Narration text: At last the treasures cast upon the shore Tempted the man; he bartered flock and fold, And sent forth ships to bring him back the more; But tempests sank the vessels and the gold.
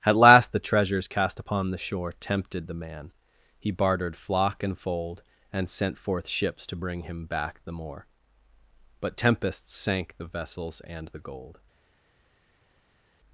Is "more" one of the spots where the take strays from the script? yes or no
no